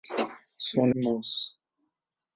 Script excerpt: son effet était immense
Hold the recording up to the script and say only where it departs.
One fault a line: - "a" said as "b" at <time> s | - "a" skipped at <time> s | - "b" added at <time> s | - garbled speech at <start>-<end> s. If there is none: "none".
- "effet était" skipped at 0.9 s